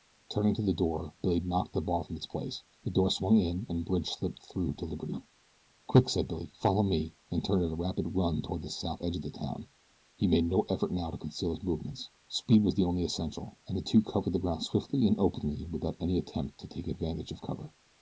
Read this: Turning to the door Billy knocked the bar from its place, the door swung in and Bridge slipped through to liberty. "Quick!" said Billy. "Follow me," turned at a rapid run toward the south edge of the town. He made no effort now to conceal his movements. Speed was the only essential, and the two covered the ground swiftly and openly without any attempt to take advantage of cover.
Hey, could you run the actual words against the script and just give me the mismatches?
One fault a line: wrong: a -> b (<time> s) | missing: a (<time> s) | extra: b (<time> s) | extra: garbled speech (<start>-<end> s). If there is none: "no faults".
extra: and (7.3 s)